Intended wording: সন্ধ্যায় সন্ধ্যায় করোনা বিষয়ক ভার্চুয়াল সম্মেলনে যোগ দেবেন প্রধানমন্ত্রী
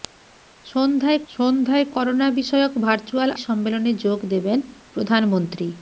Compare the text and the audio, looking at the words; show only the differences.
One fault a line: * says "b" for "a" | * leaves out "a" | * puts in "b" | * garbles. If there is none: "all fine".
all fine